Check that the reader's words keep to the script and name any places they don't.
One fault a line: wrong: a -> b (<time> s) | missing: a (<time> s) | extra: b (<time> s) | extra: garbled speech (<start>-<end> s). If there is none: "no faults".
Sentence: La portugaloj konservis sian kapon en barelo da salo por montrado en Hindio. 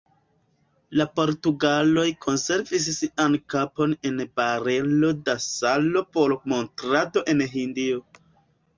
no faults